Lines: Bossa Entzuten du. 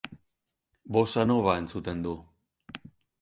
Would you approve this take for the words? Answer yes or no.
no